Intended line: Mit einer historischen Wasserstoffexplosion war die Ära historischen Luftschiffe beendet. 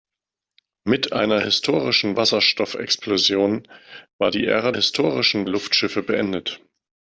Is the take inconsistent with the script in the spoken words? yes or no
no